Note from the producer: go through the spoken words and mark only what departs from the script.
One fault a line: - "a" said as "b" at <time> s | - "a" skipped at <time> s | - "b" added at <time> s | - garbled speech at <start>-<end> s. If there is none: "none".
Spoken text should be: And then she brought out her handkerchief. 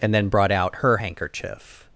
- "she" skipped at 0.3 s